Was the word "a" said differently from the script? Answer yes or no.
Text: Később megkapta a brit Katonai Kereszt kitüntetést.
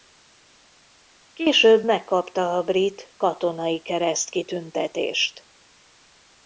no